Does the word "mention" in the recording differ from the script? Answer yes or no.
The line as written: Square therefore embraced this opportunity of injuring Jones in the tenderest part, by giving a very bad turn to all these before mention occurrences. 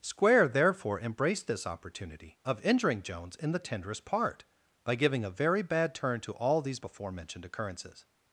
yes